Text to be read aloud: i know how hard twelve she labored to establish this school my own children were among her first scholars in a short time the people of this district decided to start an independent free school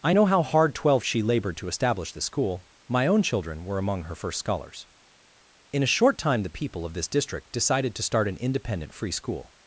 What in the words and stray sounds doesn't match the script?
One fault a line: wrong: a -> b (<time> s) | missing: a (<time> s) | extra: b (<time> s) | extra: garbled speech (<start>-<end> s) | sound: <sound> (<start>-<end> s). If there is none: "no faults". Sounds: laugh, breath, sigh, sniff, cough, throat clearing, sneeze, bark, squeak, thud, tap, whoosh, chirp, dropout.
wrong: this -> the (2.1 s)